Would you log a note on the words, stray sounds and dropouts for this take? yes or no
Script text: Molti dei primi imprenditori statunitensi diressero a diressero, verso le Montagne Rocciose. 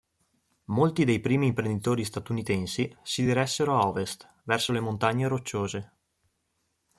yes